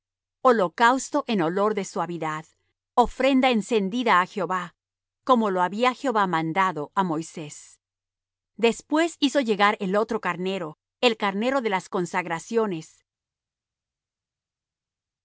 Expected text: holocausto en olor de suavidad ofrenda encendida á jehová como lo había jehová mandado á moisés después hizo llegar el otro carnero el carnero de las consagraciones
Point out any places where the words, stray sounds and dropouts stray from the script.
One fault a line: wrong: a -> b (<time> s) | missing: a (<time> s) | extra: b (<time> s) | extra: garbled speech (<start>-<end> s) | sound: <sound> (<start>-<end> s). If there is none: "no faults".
no faults